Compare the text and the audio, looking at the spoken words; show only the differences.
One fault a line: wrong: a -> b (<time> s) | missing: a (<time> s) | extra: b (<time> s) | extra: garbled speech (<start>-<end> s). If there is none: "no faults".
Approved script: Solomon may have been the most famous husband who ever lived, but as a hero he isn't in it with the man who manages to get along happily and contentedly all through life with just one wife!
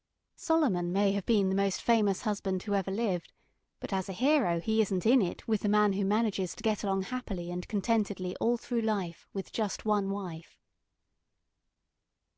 no faults